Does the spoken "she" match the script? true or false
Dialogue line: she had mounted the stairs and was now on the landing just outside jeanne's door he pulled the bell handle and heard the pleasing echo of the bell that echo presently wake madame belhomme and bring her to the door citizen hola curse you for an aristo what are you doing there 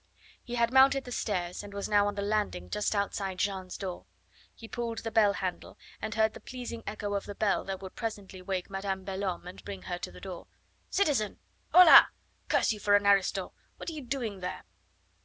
false